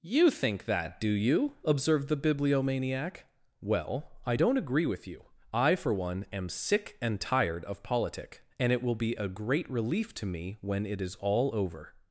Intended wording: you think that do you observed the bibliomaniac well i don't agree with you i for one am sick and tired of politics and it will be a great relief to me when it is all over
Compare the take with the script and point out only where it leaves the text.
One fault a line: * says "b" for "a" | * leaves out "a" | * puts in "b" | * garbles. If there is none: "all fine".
* says "politic" for "politics"